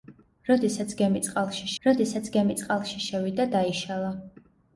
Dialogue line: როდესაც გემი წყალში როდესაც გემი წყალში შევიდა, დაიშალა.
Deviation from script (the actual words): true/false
false